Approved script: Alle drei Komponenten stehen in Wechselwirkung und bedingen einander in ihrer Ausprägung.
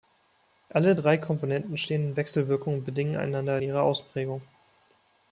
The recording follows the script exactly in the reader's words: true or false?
false